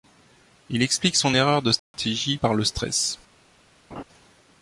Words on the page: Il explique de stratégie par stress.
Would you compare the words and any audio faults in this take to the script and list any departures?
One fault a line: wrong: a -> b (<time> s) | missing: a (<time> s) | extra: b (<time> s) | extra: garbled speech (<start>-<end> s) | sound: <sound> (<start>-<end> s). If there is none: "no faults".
extra: son erreur (1.1 s)
sound: dropout (1.8-1.9 s)
extra: le (2.5 s)
sound: laugh (3.9-4.0 s)